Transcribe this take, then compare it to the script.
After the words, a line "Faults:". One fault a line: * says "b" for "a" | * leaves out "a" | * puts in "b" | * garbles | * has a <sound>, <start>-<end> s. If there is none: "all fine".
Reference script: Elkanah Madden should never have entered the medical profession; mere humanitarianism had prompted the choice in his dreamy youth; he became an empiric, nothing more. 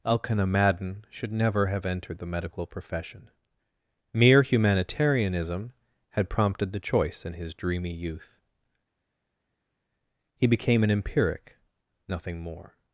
Elkanah Madden should never have entered the medical profession; mere humanitarianism had prompted the choice in his dreamy youth; he became an empiric, nothing more.
Faults:
all fine